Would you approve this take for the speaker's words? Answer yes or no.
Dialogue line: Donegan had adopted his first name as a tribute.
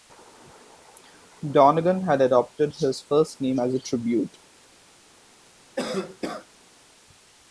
yes